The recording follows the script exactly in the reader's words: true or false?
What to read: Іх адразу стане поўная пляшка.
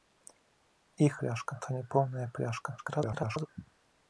false